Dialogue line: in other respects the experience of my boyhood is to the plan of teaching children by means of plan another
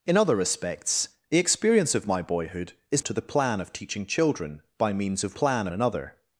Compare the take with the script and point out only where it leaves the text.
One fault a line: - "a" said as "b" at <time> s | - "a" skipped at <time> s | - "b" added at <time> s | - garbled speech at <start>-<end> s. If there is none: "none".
none